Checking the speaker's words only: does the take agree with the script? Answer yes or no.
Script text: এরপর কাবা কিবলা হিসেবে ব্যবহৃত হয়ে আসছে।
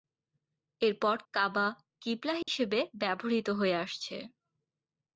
yes